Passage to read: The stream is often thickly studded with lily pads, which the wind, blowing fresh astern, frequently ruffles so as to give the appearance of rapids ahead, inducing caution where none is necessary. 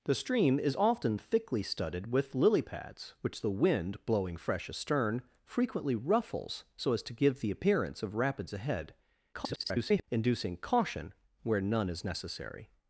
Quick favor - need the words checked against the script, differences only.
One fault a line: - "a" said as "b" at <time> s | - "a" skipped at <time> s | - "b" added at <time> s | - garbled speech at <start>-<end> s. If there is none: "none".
- garbled speech at 9.3-10.0 s